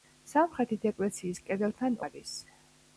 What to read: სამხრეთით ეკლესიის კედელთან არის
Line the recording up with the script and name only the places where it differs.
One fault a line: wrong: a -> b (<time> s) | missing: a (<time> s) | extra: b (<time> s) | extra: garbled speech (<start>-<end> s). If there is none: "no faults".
no faults